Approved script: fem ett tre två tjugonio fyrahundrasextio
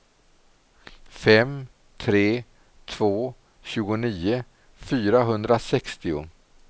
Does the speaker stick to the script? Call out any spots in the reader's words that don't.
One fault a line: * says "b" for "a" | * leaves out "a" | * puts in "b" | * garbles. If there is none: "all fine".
* leaves out "ett"